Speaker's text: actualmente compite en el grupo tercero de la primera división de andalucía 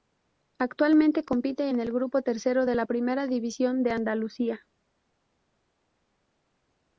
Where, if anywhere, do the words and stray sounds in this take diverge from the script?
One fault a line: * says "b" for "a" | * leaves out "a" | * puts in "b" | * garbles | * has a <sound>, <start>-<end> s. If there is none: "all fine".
all fine